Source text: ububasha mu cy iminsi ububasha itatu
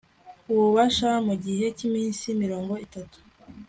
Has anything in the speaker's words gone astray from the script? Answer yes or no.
yes